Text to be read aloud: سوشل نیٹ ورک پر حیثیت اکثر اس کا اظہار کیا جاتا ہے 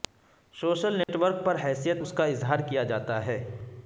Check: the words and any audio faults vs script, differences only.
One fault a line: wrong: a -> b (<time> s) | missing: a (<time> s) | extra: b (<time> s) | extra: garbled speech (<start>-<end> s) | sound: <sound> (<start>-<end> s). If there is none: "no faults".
sound: dropout (1.0-1.1 s)
missing: اکثر (2.0 s)